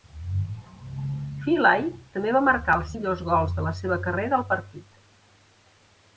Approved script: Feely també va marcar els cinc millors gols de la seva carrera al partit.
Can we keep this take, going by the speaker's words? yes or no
no